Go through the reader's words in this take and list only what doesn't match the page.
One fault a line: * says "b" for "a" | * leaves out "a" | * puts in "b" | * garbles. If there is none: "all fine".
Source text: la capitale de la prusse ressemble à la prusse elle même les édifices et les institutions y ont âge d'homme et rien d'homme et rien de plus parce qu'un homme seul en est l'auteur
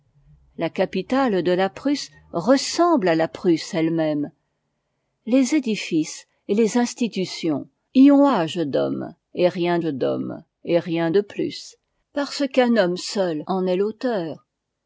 all fine